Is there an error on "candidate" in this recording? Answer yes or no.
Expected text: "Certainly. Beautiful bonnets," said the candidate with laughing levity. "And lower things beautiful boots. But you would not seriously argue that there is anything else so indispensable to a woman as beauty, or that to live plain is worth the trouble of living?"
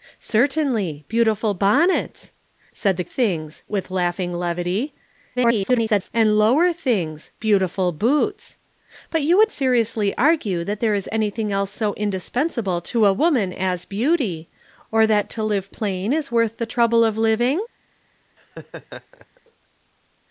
yes